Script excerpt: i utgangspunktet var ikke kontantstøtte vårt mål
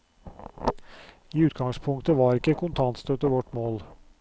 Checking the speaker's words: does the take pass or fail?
pass